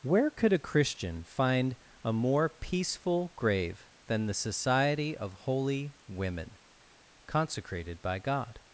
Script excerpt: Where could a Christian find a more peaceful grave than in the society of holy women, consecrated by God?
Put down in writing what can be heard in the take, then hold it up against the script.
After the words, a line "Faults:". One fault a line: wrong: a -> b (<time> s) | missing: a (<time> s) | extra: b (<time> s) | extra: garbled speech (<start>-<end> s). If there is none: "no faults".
Where could a Christian find a more peaceful grave than the society of holy women, consecrated by God?
Faults:
missing: in (4.2 s)